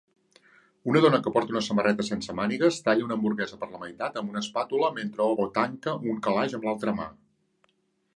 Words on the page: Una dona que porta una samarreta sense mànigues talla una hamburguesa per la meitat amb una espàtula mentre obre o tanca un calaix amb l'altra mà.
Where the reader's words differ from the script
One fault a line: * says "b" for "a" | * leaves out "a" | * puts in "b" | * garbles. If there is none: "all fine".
* leaves out "obre"